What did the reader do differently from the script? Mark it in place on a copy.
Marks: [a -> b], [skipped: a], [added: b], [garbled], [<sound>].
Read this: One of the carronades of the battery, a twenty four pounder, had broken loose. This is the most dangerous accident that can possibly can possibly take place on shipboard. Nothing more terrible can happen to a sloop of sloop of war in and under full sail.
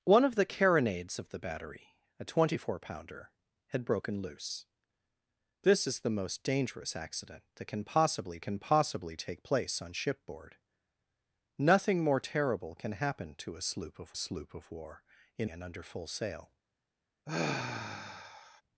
One of the carronades of the battery, a twenty four pounder, had broken loose. This is the most dangerous accident that can possibly can possibly take place on shipboard. Nothing more terrible can happen to a sloop of sloop of war in and under full sail. [sigh]